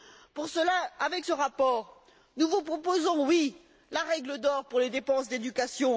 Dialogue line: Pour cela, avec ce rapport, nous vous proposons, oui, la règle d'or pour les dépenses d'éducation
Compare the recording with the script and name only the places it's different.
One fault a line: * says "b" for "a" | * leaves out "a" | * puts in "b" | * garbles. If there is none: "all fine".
all fine